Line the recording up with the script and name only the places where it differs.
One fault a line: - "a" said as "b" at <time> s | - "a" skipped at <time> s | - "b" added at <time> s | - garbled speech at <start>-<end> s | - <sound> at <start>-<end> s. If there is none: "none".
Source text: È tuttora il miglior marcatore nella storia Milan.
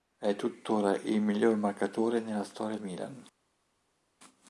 none